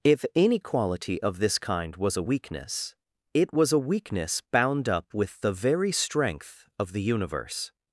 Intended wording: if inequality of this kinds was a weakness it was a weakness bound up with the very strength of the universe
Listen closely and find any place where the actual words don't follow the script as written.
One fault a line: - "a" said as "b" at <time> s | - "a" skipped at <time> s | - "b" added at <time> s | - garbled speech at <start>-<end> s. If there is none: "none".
- "kinds" said as "kind" at 1.6 s